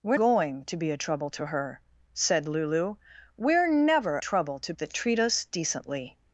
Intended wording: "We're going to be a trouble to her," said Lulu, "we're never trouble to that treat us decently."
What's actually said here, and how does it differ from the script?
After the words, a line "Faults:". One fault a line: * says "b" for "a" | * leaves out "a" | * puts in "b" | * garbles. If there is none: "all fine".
"We're going to be a trouble to her," said Lulu, "we're never trouble to that treat us decently."
Faults:
all fine